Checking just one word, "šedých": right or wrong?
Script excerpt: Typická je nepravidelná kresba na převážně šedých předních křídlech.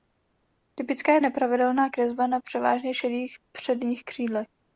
right